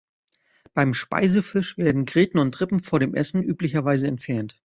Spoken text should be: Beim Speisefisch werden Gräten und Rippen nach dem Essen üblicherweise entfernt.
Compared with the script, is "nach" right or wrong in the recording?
wrong